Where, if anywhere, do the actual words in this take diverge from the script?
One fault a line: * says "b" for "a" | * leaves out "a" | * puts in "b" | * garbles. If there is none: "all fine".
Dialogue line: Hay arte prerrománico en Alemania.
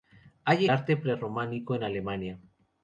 all fine